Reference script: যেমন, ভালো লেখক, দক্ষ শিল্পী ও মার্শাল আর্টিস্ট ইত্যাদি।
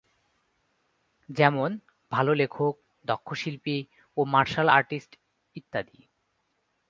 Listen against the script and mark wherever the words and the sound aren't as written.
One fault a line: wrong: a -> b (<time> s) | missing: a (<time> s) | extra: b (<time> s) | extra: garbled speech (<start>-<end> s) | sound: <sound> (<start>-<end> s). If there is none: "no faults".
no faults